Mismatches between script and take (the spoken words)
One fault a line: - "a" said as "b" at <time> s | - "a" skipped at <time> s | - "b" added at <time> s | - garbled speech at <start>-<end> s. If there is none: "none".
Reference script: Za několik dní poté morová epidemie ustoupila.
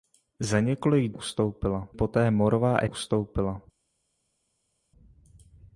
- "dní" said as "ustoupila" at 1.1 s
- "epidemie" skipped at 2.8 s